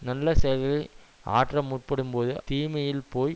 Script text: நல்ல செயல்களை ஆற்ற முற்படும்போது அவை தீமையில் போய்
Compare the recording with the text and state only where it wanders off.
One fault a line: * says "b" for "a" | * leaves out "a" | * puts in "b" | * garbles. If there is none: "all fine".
* leaves out "அவை"